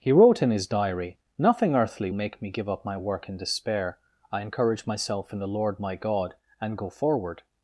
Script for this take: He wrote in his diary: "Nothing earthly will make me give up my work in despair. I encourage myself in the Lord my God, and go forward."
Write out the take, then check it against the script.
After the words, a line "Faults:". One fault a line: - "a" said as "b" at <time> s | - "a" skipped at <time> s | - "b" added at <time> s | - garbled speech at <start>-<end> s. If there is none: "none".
He wrote in his diary: "Nothing earthly make me give up my work in despair. I encourage myself in the Lord my God, and go forward."
Faults:
- "will" skipped at 2.1 s